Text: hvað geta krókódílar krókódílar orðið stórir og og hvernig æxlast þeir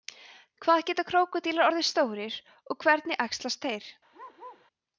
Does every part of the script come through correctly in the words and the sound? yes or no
no